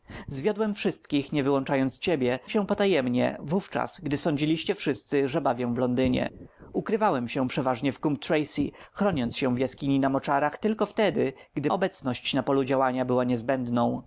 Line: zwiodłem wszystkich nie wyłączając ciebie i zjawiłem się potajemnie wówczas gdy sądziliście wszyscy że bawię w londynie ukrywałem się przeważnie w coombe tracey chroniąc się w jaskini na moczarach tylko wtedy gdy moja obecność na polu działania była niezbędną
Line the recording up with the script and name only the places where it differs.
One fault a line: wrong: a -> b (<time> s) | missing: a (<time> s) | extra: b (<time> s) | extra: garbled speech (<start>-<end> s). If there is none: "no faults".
missing: i zjawiłem (2.4 s)
missing: moja (11.7 s)